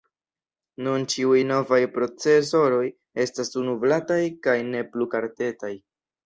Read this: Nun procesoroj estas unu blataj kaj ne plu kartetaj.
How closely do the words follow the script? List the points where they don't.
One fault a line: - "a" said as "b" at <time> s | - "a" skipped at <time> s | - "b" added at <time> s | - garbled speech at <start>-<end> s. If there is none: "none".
- "ĉiuj novaj" added at 1.1 s